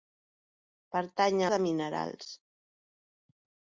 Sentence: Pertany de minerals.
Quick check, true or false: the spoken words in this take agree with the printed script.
true